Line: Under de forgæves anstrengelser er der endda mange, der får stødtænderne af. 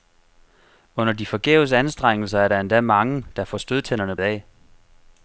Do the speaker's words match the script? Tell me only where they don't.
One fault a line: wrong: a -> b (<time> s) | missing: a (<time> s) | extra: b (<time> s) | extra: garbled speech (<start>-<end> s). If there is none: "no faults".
no faults